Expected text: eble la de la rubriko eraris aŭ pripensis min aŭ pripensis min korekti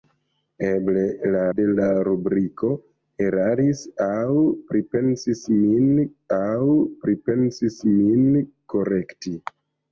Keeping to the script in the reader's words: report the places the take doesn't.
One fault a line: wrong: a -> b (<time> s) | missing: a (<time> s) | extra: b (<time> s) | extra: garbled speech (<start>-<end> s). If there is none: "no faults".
no faults